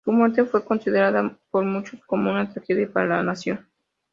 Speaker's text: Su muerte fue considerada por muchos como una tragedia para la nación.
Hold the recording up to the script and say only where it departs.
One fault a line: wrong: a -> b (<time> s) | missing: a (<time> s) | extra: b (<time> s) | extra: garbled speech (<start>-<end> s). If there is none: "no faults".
no faults